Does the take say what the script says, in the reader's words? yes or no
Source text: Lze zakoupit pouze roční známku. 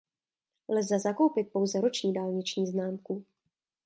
no